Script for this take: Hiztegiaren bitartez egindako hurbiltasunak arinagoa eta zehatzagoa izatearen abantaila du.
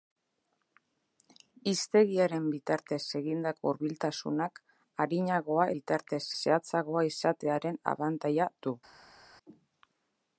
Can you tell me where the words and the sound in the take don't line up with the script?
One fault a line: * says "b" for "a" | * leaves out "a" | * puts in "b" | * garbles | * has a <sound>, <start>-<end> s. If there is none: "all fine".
* says "bitartez" for "eta"